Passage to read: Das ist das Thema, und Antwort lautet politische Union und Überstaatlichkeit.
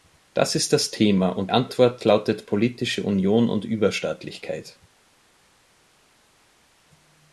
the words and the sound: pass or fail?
pass